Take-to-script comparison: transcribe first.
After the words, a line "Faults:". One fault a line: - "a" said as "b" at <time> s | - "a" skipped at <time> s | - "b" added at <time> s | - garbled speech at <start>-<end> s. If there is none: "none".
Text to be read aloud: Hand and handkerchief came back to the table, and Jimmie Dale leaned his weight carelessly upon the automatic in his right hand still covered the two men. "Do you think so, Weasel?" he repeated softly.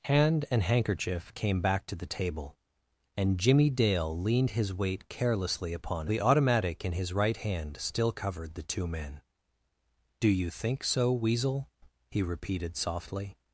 Hand and handkerchief came back to the table, and Jimmie Dale leaned his weight carelessly upon the automatic in his right hand still covered the two men. "Do you think so, Weasel?" he repeated softly.
Faults:
none